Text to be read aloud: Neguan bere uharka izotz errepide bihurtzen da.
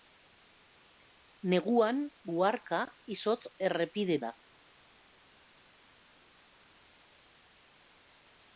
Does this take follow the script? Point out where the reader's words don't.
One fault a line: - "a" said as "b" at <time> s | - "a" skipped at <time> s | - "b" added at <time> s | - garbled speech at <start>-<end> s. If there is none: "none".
- "bere" skipped at 2.0 s
- "bihurtzen" skipped at 4.2 s